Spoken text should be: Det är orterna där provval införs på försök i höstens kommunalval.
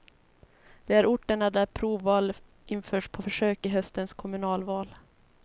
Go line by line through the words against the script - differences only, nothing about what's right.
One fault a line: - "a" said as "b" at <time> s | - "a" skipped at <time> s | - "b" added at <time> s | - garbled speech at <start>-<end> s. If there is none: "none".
none